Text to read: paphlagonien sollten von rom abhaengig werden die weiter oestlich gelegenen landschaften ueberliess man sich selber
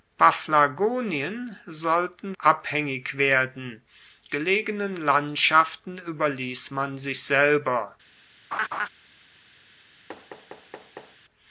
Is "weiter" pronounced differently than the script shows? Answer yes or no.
yes